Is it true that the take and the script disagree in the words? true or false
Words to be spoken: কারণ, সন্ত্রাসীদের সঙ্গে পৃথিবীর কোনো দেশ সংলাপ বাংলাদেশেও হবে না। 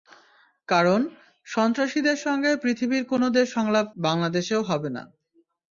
false